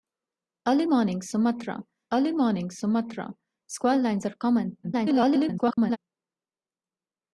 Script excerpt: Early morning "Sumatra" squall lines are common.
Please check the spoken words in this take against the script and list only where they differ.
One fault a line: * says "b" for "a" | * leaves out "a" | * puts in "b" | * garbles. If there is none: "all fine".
* puts in "early morning Sumatra"
* garbles